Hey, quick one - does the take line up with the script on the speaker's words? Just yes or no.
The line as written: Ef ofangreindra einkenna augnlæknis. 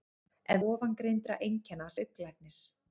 yes